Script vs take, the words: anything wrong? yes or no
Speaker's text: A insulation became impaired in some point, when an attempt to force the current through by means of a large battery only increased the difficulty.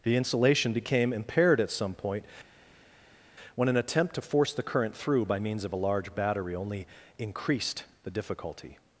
yes